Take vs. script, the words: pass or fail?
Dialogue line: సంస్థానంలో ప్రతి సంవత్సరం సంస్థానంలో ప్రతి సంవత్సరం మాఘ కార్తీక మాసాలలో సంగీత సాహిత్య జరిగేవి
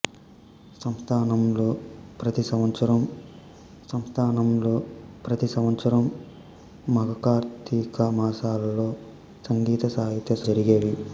pass